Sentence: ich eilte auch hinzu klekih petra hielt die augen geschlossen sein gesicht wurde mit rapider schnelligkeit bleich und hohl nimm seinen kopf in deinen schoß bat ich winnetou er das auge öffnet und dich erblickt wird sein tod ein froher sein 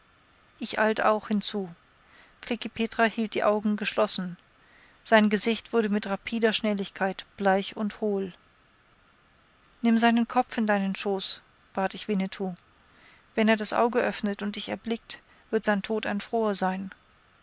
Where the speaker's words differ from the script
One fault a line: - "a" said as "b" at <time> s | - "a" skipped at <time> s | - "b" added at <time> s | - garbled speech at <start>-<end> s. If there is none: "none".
- "wenn" added at 13.3 s